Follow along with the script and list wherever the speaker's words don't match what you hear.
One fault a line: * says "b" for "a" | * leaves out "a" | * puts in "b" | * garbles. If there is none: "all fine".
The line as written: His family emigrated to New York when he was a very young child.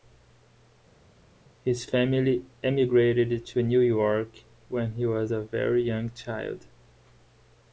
all fine